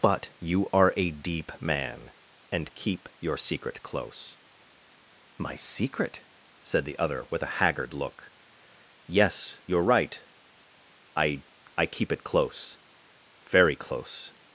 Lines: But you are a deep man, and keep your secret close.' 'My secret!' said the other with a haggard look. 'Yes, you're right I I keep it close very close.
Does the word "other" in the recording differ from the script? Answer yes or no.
no